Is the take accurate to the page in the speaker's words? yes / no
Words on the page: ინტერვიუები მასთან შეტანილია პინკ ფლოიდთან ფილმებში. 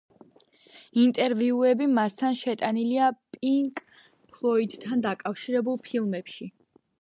no